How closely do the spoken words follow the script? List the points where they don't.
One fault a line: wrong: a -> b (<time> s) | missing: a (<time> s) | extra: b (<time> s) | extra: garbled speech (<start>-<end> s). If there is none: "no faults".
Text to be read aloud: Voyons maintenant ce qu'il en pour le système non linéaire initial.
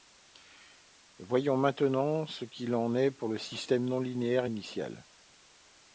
extra: est (3.0 s)